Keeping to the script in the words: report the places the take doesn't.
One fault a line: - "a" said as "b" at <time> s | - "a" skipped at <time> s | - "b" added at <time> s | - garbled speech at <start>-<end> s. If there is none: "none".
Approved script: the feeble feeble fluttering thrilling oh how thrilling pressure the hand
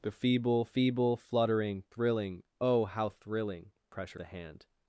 none